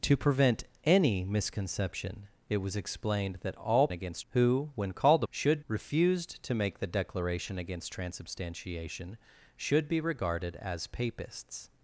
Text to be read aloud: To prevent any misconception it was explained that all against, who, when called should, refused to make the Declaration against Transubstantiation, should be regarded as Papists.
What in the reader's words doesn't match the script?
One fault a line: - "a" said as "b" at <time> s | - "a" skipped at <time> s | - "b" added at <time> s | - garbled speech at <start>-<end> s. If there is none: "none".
none